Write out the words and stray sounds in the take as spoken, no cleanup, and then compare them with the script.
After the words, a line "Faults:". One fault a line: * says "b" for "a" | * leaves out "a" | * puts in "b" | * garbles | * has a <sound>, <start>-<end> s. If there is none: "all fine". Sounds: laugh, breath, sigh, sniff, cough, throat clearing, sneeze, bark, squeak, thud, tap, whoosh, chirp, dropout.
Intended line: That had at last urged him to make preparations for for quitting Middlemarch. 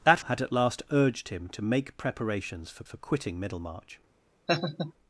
That had at last urged him to make preparations for for quitting Middlemarch.
Faults:
* has a laugh, 4.5-4.9 s